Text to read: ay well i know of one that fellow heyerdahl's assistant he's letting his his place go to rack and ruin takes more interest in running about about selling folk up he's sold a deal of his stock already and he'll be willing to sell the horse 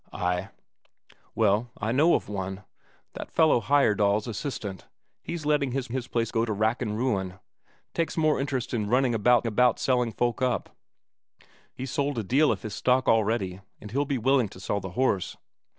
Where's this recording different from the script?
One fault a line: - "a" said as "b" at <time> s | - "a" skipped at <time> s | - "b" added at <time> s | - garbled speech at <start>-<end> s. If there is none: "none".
none